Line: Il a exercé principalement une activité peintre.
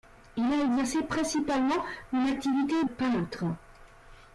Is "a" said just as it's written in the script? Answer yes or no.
yes